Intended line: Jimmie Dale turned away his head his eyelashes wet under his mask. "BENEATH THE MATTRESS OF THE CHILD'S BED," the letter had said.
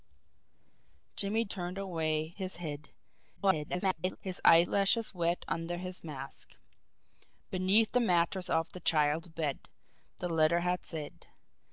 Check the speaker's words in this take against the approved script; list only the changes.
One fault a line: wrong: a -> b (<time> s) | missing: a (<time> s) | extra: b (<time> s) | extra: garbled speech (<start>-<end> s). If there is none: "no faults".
missing: Dale (1.4 s)
extra: garbled speech (3.4-4.2 s)